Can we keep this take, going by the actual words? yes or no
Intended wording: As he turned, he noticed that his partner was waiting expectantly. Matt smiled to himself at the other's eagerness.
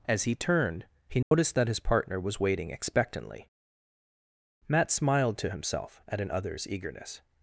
no